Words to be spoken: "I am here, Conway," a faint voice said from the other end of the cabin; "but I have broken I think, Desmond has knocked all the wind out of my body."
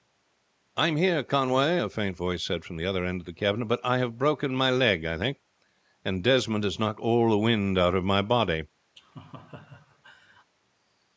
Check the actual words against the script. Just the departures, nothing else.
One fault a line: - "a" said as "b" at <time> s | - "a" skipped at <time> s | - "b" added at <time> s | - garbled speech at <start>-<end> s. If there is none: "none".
- "my leg" added at 4.5 s
- "and" added at 6.0 s